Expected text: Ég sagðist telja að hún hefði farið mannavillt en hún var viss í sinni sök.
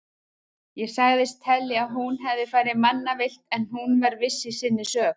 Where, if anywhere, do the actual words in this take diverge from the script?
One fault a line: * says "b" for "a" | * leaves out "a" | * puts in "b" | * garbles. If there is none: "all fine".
all fine